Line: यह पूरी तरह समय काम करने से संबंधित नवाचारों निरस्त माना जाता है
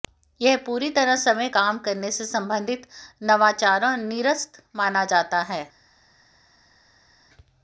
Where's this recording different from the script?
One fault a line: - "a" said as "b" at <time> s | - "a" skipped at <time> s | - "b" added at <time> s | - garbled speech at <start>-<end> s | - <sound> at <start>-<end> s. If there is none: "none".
none